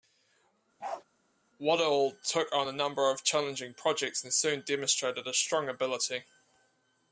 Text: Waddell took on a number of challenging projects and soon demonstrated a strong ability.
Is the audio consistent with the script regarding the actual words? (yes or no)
yes